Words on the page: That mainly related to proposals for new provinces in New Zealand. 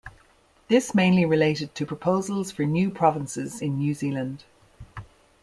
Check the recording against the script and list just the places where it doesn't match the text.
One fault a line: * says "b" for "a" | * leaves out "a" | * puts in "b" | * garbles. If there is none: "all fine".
* says "This" for "That"